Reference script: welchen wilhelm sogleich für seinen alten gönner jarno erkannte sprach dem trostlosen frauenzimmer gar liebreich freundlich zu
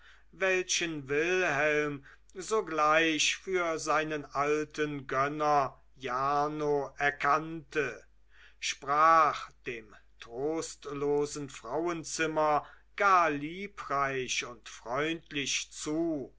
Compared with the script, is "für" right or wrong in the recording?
right